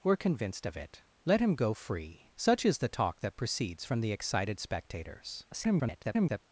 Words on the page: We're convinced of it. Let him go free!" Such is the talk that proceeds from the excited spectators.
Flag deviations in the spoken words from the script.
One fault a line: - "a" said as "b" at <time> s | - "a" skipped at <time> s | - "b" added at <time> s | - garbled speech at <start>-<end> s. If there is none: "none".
- garbled speech at 5.5-6.4 s